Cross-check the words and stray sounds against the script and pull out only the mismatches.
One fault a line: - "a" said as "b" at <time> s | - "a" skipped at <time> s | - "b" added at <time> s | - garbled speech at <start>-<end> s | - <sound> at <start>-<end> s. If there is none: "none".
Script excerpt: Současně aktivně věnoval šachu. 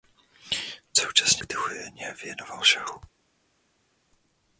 none